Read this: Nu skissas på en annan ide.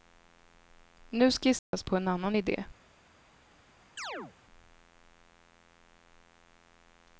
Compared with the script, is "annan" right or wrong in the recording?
right